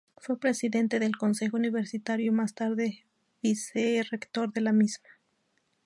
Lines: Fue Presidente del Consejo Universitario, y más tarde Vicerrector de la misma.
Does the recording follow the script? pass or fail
pass